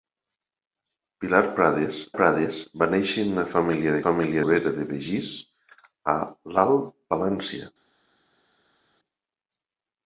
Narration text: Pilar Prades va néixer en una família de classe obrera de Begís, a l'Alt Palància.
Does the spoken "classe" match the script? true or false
false